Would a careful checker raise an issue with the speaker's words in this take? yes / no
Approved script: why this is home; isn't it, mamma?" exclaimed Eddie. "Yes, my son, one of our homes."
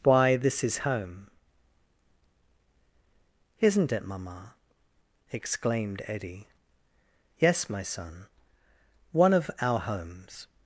no